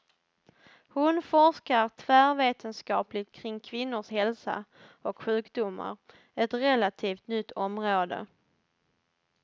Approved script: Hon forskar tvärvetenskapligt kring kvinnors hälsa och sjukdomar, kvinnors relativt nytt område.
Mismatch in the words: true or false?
true